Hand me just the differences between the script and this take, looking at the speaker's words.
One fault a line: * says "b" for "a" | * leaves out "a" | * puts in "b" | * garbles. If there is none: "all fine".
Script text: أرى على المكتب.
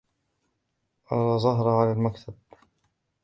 * puts in "زهرة"